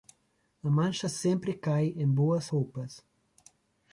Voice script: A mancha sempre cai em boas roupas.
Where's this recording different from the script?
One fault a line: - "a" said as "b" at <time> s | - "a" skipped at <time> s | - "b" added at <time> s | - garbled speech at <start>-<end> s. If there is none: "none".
none